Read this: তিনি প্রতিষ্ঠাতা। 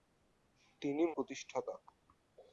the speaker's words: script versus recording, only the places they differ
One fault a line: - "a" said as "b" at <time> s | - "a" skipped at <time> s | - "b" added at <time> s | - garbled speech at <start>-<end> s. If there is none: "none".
none